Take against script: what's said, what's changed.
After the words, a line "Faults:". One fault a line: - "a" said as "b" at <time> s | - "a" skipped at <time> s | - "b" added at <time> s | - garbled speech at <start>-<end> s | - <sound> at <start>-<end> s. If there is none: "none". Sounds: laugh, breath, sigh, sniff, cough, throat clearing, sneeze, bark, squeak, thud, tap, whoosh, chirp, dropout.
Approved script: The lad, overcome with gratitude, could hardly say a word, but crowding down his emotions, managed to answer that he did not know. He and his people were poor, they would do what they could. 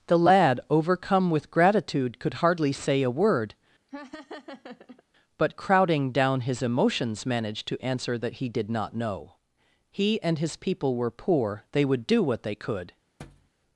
The lad, overcome with gratitude, could hardly say a word, but crowding down his emotions, managed to answer that he did not know. He and his people were poor, they would do what they could.
Faults:
- laugh at 3.9-5.0 s
- thud at 13.2-13.5 s